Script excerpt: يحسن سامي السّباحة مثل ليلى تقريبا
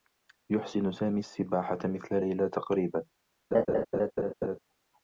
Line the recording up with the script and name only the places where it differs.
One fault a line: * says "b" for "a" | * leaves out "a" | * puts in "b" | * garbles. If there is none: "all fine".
all fine